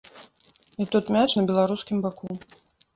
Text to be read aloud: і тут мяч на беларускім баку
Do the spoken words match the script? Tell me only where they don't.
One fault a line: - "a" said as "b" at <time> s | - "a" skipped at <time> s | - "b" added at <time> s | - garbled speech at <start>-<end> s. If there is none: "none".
none